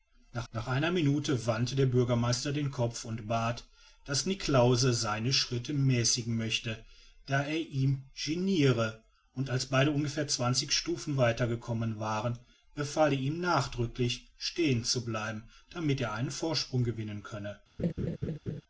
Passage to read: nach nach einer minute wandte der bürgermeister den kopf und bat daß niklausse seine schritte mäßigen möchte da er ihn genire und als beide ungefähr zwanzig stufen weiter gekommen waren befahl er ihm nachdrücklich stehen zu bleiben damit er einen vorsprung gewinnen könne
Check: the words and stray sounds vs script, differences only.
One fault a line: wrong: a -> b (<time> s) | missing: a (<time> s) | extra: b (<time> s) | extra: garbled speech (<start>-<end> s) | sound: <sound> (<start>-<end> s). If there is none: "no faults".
sound: laugh (17.8-18.6 s)